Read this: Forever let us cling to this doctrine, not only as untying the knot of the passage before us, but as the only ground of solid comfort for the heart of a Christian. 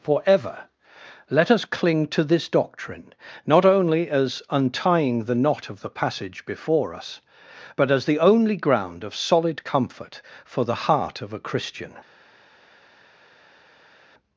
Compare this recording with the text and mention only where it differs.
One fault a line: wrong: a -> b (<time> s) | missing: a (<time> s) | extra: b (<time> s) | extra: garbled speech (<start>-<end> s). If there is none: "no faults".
no faults